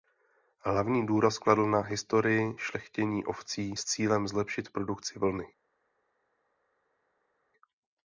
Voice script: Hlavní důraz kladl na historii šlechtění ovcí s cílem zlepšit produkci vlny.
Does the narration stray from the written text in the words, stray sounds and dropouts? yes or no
no